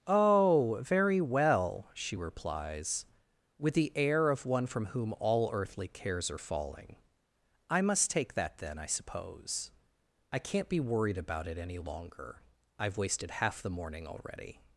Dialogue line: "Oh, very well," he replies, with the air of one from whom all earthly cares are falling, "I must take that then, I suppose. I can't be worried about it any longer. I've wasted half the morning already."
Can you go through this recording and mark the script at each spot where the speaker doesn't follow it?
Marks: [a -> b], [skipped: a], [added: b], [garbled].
"Oh, very well," [he -> she] replies, with the air of one from whom all earthly cares are falling, "I must take that then, I suppose. I can't be worried about it any longer. I've wasted half the morning already."